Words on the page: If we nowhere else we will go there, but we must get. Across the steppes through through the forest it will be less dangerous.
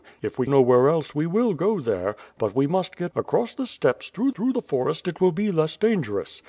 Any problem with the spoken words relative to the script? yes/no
no